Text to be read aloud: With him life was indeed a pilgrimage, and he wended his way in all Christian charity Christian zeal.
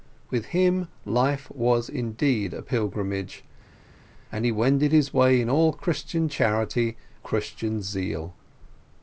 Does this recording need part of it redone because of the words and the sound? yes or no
no